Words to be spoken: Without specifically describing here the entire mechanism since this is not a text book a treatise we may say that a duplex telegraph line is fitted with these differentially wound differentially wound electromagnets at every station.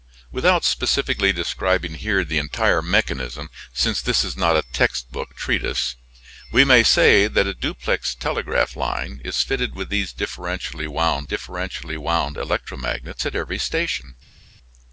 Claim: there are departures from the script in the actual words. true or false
false